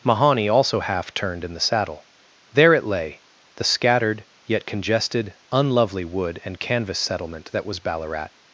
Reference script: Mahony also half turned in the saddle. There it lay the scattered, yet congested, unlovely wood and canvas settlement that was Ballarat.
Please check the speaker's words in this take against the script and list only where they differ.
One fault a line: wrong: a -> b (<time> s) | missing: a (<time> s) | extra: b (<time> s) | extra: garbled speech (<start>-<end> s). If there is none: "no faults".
no faults